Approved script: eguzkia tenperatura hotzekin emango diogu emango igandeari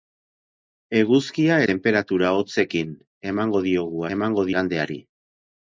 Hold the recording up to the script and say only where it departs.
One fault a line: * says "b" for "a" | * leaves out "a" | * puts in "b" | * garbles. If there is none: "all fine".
all fine